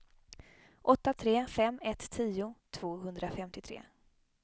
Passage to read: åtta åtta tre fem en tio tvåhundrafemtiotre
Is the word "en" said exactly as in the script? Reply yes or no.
no